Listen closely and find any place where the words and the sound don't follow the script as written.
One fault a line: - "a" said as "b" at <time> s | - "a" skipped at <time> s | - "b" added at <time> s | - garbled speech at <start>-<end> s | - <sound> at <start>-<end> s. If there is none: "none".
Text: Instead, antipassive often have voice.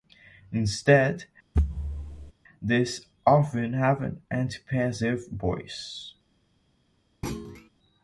- thud at 1.5-2.3 s
- "antipassive" said as "these" at 2.6 s
- "an antipassive" added at 4.0 s
- thud at 7.2-7.7 s